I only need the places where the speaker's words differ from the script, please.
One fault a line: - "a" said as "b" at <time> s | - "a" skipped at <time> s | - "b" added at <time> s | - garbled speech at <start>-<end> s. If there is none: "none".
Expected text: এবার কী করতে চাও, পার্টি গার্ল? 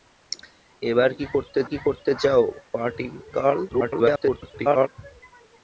- "কী করতে" added at 1.7 s
- garbled speech at 3.7-4.9 s